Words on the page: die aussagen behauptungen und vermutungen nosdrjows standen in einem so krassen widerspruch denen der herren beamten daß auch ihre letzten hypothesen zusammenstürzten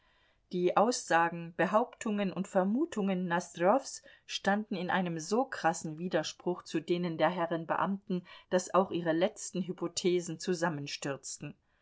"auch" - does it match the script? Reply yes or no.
yes